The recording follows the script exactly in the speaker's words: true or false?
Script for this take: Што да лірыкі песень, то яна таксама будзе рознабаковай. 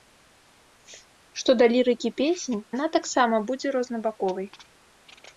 false